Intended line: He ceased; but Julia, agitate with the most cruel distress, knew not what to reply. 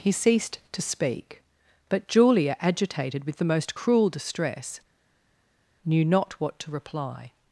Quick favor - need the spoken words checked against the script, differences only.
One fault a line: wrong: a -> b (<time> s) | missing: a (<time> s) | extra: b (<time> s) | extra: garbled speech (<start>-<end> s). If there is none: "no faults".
extra: to speak (0.7 s)
wrong: agitate -> agitated (2.6 s)